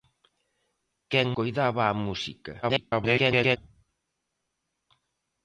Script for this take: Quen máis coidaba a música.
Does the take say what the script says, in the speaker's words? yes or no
no